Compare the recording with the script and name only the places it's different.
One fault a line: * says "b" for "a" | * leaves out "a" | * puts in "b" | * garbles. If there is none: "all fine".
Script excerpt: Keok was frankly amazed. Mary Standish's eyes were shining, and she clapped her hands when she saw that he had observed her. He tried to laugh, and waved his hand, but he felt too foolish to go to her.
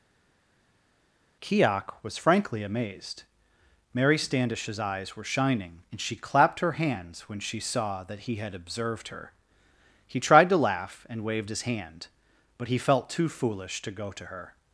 all fine